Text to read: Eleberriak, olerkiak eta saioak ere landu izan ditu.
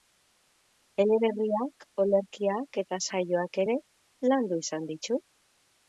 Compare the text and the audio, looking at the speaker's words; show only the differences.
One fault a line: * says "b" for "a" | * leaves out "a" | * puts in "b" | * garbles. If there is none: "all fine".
all fine